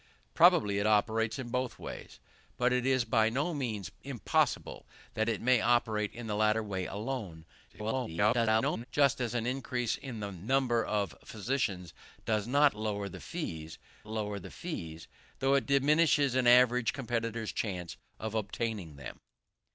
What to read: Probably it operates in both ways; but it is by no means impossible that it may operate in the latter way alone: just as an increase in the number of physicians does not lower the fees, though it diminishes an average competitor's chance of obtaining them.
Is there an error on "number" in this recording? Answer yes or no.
no